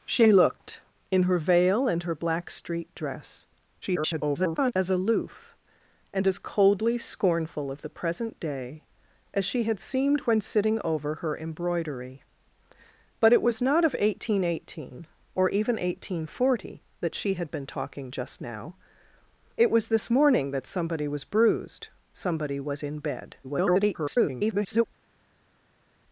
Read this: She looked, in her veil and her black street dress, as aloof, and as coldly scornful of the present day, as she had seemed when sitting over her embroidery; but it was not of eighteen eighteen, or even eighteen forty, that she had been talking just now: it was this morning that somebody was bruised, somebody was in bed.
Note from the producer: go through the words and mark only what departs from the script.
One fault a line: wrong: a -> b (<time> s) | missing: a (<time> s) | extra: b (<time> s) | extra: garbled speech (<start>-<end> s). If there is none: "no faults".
extra: garbled speech (3.8-4.7 s)
extra: garbled speech (23.4-24.9 s)